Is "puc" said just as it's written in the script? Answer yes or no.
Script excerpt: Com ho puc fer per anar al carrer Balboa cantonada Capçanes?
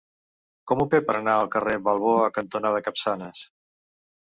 no